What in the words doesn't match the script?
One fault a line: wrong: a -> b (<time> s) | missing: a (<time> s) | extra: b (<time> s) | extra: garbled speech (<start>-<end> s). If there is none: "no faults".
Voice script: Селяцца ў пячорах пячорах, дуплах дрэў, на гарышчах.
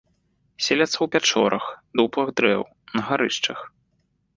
missing: пячорах (1.6 s)